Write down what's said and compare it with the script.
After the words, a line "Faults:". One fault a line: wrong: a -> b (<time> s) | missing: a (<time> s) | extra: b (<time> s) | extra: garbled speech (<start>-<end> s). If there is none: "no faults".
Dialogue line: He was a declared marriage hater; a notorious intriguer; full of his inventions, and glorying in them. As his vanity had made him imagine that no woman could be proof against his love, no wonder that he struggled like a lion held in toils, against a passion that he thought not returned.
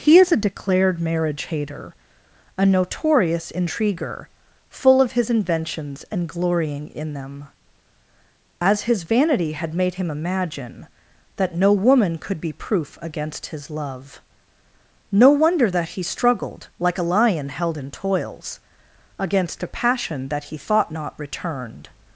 He is a declared marriage hater; a notorious intriguer; full of his inventions, and glorying in them. As his vanity had made him imagine that no woman could be proof against his love, no wonder that he struggled like a lion held in toils, against a passion that he thought not returned.
Faults:
wrong: was -> is (0.2 s)